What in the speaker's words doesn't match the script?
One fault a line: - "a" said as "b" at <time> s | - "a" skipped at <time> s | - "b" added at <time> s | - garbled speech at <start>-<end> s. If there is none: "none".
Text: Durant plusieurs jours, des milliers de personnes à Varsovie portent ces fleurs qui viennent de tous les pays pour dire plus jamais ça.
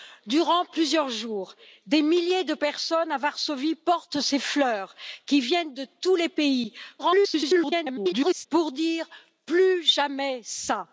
- garbled speech at 7.0-8.5 s